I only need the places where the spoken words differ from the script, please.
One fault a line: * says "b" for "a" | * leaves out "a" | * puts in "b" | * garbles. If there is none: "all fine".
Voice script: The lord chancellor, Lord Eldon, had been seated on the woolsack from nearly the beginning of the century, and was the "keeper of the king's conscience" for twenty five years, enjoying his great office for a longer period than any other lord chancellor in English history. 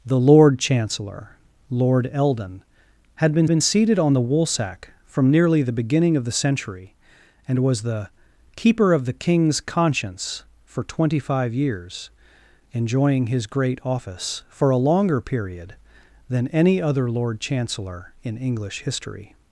* puts in "been"